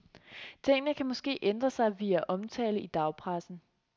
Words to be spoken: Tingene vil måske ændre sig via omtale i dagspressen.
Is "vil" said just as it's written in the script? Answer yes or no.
no